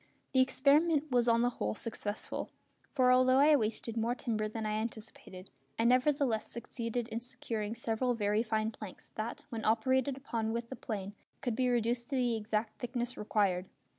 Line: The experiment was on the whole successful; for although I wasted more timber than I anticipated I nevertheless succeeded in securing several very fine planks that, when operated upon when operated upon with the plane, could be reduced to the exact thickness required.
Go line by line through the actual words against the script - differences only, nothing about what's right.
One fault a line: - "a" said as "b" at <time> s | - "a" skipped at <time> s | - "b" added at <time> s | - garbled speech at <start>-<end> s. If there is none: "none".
- "when operated upon" skipped at 10.5 s